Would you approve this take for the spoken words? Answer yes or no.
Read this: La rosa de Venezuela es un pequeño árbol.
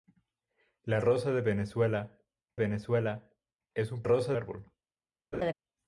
no